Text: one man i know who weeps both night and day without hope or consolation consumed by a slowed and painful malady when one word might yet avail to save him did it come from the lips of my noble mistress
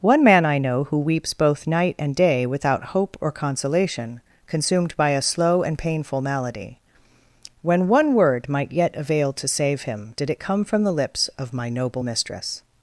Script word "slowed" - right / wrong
wrong